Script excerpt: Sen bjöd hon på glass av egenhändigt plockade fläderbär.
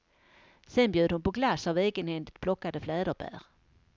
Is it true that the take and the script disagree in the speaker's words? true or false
false